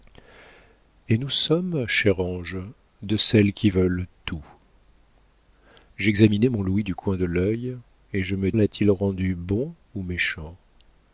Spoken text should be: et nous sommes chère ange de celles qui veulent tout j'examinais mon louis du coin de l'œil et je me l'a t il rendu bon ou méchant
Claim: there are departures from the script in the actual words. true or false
false